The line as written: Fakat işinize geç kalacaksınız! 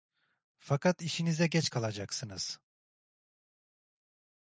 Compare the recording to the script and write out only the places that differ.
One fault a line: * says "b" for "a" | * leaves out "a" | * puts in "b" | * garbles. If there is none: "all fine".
all fine